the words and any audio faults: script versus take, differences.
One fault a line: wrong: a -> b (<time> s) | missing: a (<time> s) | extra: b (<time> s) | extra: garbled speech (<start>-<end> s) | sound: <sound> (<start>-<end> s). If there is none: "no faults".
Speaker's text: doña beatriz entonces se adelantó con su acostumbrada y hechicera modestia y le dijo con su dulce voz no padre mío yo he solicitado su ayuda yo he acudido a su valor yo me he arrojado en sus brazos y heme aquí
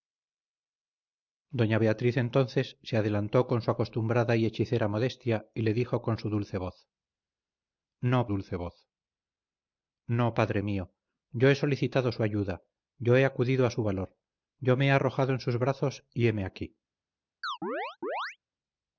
extra: dulce voz no (8.3 s)
sound: chirp (17.4-18.4 s)